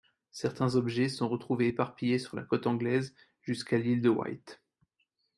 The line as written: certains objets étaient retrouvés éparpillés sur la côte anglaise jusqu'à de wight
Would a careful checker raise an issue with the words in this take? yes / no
yes